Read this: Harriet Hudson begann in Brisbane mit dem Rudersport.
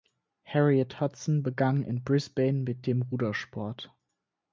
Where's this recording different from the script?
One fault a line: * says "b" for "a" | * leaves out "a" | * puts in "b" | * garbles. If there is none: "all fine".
all fine